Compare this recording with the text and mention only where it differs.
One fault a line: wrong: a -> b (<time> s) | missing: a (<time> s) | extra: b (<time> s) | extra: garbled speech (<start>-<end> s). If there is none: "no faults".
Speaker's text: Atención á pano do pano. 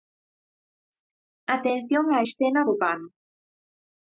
wrong: pano -> escena (2.2 s)